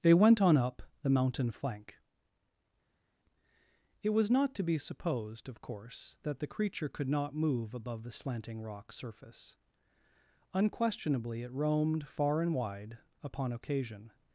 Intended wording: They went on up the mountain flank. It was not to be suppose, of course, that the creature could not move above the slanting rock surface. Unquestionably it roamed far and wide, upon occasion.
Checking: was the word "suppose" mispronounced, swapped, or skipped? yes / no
yes